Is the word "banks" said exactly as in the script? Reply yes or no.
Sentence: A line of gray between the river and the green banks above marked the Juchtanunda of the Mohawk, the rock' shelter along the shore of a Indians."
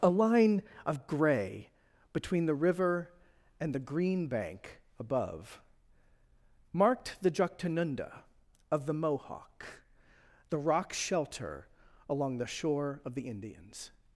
no